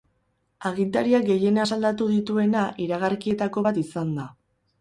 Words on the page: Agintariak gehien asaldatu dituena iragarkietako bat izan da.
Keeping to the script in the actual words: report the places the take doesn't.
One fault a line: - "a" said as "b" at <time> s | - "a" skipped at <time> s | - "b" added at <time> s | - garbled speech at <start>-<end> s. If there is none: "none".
none